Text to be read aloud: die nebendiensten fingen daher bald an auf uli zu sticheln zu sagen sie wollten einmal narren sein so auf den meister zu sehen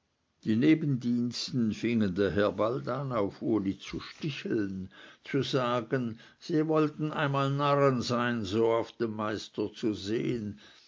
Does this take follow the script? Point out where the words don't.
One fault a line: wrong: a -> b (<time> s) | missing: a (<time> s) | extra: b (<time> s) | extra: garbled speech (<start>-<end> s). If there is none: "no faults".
no faults